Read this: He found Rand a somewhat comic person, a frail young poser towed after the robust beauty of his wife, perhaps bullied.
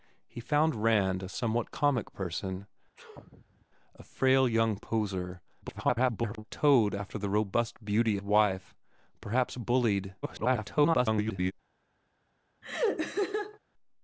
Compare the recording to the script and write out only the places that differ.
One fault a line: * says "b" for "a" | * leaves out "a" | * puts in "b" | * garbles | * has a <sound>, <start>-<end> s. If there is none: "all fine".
* has a sneeze, 2.9-3.7 s
* garbles
* leaves out "of his"
* garbles
* has a laugh, 12.6-13.6 s